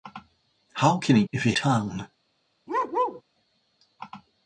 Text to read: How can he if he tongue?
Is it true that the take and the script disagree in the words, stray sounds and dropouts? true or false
true